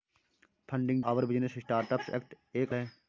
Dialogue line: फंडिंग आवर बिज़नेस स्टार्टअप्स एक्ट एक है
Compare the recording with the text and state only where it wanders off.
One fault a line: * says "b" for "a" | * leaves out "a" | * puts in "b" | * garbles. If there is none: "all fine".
all fine